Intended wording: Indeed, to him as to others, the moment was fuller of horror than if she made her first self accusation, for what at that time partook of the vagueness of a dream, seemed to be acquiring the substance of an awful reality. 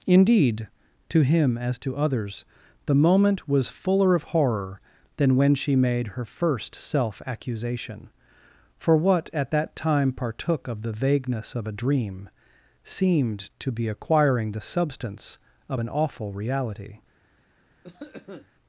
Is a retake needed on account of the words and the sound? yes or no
yes